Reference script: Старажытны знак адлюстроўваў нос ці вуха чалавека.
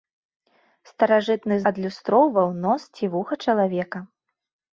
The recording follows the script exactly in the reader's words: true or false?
false